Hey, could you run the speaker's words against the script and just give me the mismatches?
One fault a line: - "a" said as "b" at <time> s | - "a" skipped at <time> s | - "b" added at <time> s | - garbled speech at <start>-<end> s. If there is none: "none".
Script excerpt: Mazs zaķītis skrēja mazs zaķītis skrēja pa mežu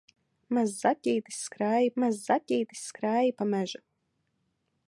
none